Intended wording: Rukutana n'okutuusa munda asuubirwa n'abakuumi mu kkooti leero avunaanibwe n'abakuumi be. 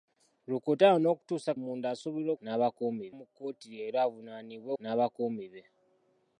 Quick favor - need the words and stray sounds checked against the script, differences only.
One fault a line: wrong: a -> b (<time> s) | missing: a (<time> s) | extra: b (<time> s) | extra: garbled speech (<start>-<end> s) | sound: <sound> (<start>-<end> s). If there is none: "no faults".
no faults